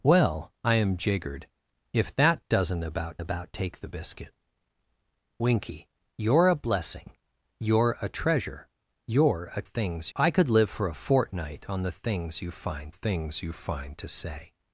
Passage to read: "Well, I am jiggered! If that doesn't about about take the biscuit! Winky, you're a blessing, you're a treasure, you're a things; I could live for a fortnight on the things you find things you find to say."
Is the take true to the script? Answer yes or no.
yes